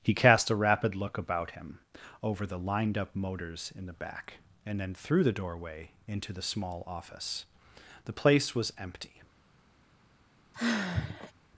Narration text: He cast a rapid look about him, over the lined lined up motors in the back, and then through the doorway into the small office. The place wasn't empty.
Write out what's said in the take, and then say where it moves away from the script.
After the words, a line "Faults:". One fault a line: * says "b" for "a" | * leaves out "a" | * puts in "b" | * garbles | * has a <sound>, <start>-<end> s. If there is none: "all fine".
He cast a rapid look about him, over the lined up motors in the back, and then through the doorway into the small office. The place was empty.
Faults:
* leaves out "lined"
* says "was" for "wasn't"
* has a sigh, 10.5-11.3 s